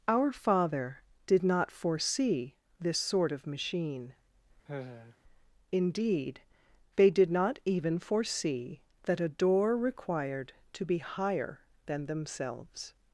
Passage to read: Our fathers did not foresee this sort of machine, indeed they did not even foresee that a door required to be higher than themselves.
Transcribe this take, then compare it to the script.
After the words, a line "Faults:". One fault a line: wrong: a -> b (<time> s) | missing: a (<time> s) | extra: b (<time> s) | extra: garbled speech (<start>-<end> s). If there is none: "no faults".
Our father did not foresee this sort of machine, indeed they did not even foresee that a door required to be higher than themselves.
Faults:
wrong: fathers -> father (0.3 s)